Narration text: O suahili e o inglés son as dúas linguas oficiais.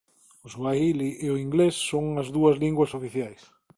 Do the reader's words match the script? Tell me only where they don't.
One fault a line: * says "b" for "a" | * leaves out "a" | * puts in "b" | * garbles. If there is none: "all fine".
all fine